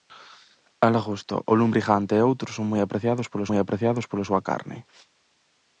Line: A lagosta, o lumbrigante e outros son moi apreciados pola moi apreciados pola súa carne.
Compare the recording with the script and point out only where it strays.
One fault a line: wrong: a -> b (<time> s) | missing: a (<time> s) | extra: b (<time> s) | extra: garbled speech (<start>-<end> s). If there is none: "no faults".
no faults